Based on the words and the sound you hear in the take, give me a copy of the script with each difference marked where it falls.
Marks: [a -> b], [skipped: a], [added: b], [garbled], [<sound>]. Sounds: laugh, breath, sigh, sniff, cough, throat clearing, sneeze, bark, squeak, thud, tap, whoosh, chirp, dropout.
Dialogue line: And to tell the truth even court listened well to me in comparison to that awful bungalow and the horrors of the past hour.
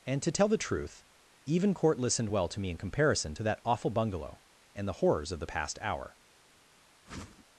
And to tell the truth even court listened well to me in comparison to that awful bungalow and the horrors of the past hour. [whoosh]